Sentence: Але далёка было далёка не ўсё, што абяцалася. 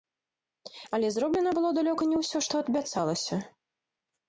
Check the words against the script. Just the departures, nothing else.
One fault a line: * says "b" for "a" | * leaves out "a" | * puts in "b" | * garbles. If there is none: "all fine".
* says "зроблена" for "далёка"